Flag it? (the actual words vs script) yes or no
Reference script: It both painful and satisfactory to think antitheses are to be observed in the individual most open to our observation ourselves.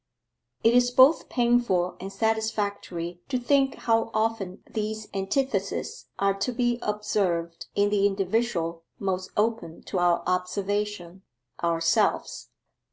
yes